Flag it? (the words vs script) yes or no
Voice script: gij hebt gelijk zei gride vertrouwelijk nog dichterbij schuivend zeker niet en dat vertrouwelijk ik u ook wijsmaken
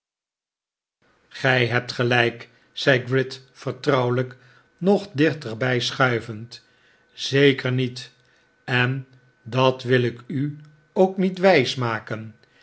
yes